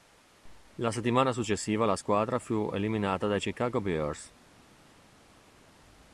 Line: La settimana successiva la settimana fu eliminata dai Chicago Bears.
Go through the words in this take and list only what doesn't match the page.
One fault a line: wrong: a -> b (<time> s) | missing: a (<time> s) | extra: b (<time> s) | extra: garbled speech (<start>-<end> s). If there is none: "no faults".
wrong: settimana -> squadra (2.0 s)